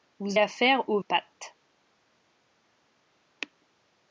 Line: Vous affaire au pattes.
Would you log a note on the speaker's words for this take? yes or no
no